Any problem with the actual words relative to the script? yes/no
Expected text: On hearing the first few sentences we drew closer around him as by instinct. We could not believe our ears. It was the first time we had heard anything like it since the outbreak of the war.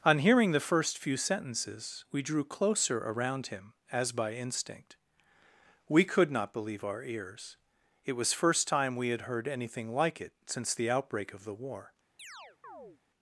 yes